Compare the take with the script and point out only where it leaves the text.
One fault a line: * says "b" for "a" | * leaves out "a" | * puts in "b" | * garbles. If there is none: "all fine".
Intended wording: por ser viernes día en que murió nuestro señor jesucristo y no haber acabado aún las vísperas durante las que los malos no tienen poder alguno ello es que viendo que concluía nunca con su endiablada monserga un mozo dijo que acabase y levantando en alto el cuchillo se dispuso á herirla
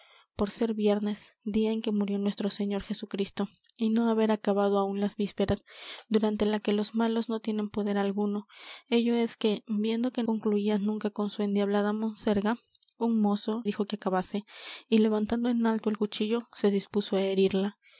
all fine